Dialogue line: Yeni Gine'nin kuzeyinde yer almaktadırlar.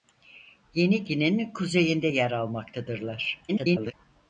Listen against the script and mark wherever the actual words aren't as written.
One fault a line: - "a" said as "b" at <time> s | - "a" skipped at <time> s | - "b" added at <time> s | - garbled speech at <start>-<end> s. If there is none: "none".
- garbled speech at 3.5-3.9 s